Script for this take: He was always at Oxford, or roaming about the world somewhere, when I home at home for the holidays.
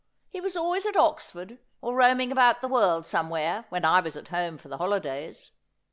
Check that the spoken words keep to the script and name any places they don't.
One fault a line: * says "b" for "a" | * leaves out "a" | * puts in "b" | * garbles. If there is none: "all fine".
* says "was" for "home"